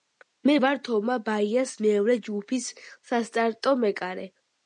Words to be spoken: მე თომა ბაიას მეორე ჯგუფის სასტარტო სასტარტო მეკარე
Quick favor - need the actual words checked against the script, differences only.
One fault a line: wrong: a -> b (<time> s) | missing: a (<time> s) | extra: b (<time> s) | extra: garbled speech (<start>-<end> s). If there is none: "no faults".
extra: ვარ (0.6 s)
missing: სასტარტო (3.8 s)